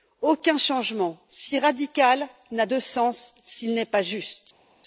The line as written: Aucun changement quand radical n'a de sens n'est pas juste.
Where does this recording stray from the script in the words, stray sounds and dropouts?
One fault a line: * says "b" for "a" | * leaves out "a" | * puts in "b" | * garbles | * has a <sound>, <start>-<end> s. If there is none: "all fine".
* says "si" for "quand"
* puts in "s'il"